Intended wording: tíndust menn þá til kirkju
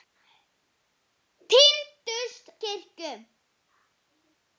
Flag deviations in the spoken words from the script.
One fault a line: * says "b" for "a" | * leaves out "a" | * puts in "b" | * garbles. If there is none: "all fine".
* leaves out "menn þá til"